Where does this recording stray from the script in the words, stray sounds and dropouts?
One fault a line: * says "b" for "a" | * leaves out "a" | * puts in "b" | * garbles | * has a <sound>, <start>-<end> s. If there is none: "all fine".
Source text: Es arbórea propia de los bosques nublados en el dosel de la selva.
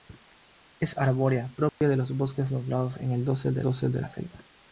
* has a dropout, 1.7-1.8 s
* puts in "dosel de"